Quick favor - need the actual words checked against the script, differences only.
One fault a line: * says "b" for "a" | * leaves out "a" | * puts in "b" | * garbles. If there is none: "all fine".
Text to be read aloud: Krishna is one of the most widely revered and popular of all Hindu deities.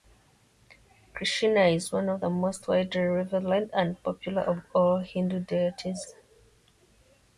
all fine